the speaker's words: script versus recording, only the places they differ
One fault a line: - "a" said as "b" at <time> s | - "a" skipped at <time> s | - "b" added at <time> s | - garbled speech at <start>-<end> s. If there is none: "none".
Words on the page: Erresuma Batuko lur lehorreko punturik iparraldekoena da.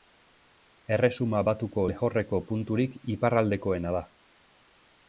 - "lur" skipped at 1.8 s